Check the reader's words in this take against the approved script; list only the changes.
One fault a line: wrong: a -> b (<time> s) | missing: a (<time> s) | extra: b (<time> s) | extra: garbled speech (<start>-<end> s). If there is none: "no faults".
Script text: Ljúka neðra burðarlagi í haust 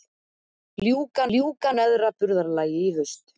extra: ljúka (1.3 s)